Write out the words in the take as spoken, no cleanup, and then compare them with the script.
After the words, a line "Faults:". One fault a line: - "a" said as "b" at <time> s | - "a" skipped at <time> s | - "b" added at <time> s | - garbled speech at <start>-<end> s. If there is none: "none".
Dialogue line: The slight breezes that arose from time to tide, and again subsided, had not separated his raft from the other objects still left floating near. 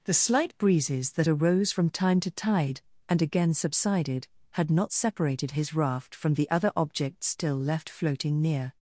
The slight breezes that arose from time to tide, and again subsided, had not separated his raft from the other objects still left floating near.
Faults:
none